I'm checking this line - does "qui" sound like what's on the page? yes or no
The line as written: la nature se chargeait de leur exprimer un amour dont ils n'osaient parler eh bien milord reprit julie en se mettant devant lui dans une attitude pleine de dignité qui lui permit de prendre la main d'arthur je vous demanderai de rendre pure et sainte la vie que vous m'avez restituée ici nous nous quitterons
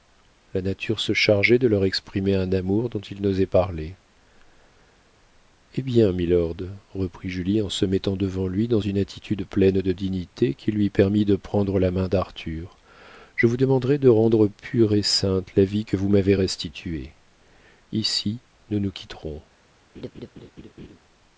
yes